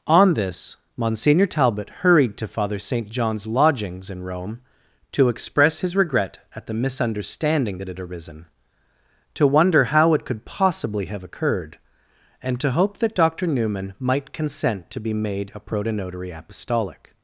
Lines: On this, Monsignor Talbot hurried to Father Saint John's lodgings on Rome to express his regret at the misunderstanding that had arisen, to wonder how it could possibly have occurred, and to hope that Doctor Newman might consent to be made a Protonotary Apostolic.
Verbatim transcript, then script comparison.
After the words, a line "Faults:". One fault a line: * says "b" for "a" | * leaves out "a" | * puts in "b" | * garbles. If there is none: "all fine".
On this, Monsignor Talbot hurried to Father Saint John's lodgings in Rome to express his regret at the misunderstanding that had arisen, to wonder how it could possibly have occurred, and to hope that Doctor Newman might consent to be made a Protonotary Apostolic.
Faults:
* says "in" for "on"